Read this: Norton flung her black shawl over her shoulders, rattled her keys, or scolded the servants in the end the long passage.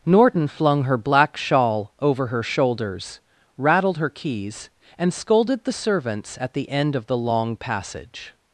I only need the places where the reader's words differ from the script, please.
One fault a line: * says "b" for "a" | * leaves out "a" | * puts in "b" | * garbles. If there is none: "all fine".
* says "and" for "or"
* says "at" for "in"
* puts in "of"